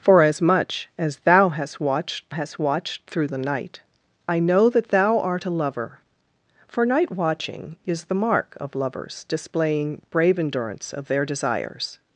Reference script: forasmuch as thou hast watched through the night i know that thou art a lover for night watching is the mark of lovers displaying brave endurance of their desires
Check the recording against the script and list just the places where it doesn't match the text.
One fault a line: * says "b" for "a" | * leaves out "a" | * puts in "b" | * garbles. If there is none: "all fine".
* puts in "hast watched"